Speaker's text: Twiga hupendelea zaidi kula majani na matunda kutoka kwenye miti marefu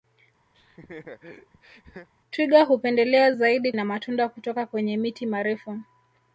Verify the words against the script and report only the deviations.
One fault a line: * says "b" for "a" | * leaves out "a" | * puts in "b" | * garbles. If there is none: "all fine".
* leaves out "kula majani"